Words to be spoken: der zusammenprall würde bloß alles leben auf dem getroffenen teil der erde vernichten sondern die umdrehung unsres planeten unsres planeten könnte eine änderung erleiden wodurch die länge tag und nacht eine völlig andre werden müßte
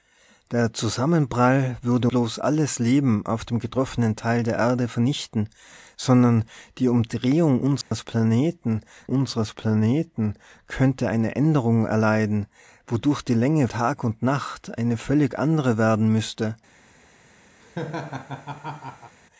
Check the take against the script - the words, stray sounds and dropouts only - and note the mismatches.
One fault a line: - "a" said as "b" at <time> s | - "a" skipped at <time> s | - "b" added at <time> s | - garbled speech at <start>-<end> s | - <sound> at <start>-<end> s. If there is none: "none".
- dropout at 7.8-7.9 s
- laugh at 17.6-19.2 s